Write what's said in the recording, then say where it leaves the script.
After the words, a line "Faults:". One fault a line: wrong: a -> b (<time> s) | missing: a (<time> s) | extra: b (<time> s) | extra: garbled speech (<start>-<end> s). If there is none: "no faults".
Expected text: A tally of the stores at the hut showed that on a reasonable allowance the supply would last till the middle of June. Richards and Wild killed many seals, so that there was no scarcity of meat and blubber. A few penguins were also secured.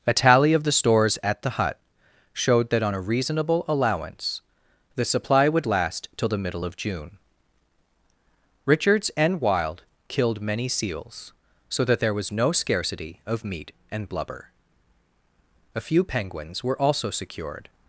A tally of the stores at the hut showed that on a reasonable allowance the supply would last till the middle of June. Richards and Wild killed many seals, so that there was no scarcity of meat and blubber. A few penguins were also secured.
Faults:
no faults